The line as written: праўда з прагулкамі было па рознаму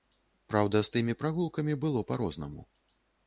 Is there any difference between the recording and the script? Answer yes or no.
yes